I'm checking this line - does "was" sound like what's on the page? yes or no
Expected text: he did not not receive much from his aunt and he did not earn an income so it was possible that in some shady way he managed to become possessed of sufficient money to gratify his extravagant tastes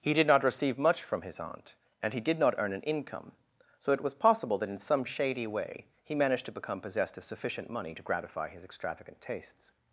yes